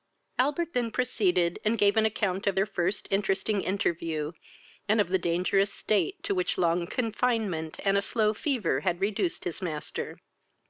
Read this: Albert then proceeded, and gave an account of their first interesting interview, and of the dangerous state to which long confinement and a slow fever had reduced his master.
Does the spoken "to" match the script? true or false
true